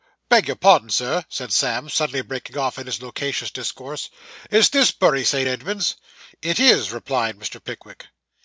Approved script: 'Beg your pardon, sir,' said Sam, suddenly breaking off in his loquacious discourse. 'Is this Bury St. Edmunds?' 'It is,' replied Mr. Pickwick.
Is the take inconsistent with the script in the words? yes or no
no